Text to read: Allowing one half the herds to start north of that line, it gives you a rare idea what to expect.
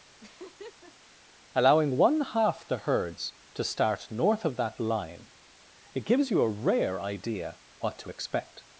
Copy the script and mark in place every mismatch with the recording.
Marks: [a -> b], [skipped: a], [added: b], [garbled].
Allowing one half the herds to start north of that line, it gives you a rare idea what to expect.